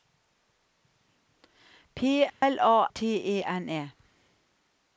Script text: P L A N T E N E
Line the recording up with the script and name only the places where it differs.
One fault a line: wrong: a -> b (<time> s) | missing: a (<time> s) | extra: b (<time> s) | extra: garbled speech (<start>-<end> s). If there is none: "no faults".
missing: N (2.9 s)